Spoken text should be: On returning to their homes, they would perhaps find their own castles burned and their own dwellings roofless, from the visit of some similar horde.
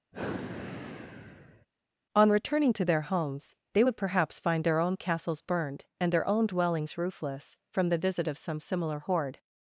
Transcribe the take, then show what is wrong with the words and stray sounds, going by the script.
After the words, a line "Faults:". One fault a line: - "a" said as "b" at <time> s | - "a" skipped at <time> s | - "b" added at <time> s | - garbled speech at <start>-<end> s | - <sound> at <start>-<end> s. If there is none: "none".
On returning to their homes, they would perhaps find their own castles burned and their own dwellings roofless, from the visit of some similar horde.
Faults:
- sigh at 0.1-1.7 s